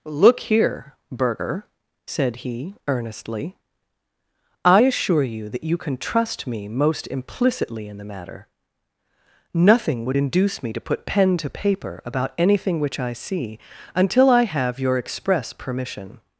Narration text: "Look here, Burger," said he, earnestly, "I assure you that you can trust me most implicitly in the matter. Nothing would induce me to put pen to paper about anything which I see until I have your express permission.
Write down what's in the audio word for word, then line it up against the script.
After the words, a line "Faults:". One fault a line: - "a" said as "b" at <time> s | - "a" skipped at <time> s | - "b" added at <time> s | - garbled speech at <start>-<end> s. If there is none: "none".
"Look here, Burger," said he, earnestly, "I assure you that you can trust me most implicitly in the matter. Nothing would induce me to put pen to paper about anything which I see until I have your express permission.
Faults:
none